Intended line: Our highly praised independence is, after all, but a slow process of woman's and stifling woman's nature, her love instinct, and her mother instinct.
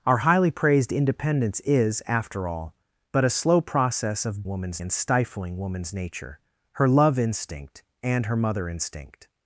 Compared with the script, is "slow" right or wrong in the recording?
right